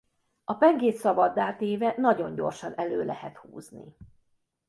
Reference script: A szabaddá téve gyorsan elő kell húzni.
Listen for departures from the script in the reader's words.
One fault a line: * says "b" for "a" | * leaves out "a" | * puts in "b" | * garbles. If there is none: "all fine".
* puts in "pengét"
* puts in "nagyon"
* says "lehet" for "kell"